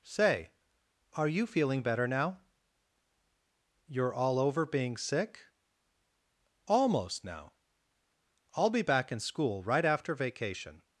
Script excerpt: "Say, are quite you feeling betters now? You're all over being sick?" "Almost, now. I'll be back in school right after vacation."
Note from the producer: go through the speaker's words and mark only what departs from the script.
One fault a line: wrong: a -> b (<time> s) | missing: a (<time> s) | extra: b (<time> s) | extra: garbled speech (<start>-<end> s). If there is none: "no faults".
missing: quite (1.3 s)
wrong: betters -> better (1.8 s)